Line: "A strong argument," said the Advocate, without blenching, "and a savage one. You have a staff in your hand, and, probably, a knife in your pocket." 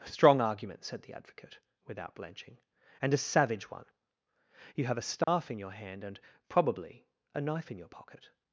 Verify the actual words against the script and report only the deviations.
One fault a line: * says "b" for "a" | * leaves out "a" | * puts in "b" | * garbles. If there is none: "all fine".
all fine